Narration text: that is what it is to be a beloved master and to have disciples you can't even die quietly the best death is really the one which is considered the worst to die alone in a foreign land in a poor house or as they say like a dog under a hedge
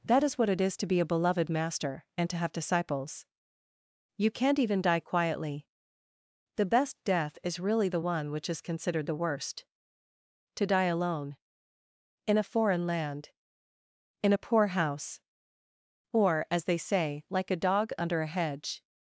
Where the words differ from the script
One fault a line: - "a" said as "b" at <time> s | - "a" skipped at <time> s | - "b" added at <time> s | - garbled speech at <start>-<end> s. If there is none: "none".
none